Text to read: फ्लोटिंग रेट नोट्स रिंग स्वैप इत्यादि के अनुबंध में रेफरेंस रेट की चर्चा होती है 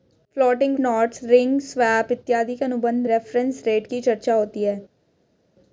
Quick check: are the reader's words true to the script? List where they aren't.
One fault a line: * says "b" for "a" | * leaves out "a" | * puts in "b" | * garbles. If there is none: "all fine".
* leaves out "रेट"
* leaves out "में"